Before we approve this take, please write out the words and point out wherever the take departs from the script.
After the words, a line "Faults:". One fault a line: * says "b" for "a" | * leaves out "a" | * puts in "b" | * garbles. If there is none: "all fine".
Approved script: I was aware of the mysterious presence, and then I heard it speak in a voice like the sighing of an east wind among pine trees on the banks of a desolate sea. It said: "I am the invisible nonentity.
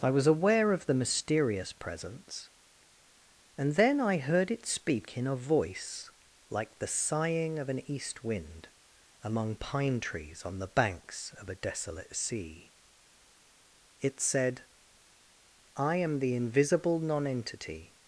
I was aware of the mysterious presence, and then I heard it speak in a voice like the sighing of an east wind among pine trees on the banks of a desolate sea. It said: "I am the invisible nonentity.
Faults:
all fine